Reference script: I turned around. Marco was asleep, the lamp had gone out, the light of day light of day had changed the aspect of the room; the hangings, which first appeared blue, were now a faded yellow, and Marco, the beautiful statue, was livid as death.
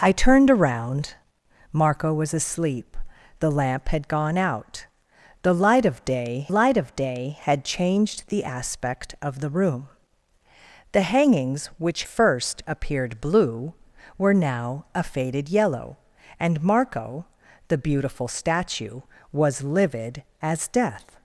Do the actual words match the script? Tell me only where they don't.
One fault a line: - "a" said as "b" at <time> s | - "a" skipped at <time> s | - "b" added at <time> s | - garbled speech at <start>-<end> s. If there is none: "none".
none